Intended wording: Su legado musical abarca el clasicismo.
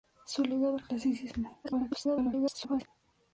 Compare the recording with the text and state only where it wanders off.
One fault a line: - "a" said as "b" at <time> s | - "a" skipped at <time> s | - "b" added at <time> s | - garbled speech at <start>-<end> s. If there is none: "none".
- "musical abarca" skipped at 0.8 s
- garbled speech at 1.6-2.9 s